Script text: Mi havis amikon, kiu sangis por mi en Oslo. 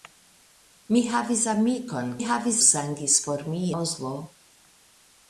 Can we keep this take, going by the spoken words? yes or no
no